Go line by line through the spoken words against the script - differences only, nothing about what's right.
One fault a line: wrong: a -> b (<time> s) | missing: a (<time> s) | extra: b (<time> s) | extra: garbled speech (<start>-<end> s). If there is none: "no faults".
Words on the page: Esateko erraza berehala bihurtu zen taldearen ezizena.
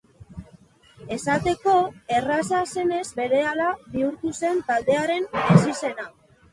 extra: zenez (2.7 s)